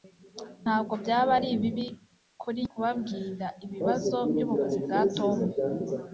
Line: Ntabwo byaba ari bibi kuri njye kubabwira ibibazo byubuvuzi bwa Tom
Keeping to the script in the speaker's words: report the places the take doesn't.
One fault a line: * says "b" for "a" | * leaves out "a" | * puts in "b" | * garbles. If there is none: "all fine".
* leaves out "njye"